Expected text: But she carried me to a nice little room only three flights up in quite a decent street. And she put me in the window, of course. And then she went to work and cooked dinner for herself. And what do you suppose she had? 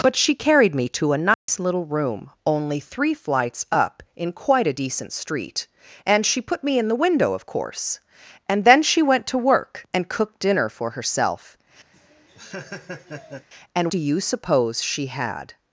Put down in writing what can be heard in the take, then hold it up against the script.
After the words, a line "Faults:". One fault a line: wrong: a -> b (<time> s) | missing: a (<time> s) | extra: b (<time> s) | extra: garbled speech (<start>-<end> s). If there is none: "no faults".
But she carried me to a nice little room only three flights up in quite a decent street. And she put me in the window, of course. And then she went to work and cooked dinner for herself. And do you suppose she had?
Faults:
missing: what (13.9 s)